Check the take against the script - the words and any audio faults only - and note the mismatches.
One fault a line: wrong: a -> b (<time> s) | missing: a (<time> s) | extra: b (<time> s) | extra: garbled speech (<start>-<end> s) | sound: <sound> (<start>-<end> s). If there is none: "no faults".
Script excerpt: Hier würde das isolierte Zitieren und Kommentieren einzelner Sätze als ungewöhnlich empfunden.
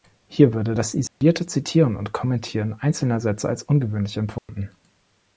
sound: dropout (1.1-1.2 s)
sound: dropout (4.4-4.5 s)